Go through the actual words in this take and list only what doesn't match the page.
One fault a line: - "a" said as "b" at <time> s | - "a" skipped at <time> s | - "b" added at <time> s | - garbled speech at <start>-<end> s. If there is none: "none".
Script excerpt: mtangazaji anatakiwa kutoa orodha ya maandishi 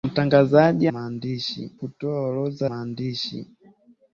- "anatakiwa" said as "maandishi" at 0.9 s
- "ya" skipped at 2.7 s